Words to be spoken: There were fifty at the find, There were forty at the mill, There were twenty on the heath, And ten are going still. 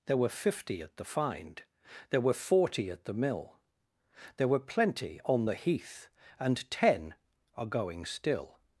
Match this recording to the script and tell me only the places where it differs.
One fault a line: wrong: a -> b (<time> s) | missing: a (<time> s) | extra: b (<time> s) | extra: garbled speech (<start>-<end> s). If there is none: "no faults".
wrong: twenty -> plenty (4.6 s)